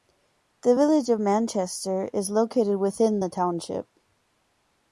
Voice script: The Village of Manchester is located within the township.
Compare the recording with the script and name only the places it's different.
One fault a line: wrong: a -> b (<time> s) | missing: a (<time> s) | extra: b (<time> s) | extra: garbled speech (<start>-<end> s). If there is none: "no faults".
no faults